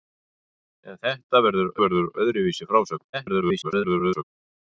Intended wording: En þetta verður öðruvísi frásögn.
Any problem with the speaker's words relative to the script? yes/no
yes